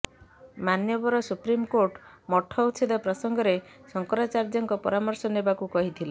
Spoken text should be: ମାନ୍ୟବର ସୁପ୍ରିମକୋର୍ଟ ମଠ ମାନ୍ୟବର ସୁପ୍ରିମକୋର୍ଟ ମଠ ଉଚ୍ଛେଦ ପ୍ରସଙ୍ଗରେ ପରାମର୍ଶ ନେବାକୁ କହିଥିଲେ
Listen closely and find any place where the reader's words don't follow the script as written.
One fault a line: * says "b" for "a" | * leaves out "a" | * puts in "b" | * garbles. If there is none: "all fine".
* leaves out "ମାନ୍ୟବର ସୁପ୍ରିମକୋର୍ଟ ମଠ"
* puts in "ଶଙ୍କରାଚାର୍ଯ୍ୟଙ୍କ"